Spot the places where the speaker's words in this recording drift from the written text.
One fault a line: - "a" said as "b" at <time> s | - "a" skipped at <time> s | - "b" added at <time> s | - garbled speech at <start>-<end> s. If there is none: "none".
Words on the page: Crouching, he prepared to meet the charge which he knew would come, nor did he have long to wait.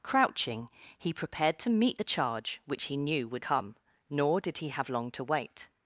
none